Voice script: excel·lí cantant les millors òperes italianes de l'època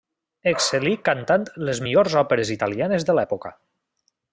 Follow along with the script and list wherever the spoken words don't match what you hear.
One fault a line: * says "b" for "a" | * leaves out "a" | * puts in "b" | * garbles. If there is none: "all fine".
all fine